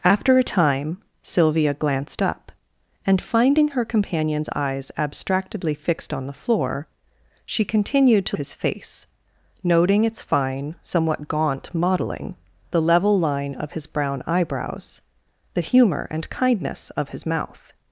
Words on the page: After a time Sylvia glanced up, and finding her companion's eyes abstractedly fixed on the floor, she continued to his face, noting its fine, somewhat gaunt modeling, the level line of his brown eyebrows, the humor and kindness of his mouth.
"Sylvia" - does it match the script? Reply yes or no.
yes